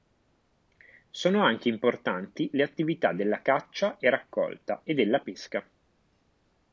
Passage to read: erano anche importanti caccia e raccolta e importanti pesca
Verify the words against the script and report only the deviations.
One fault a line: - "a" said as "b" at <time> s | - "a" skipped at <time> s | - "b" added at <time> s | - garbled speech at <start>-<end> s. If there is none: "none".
- "erano" said as "sono" at 1.1 s
- "le attività della" added at 2.5 s
- "importanti" said as "della" at 4.9 s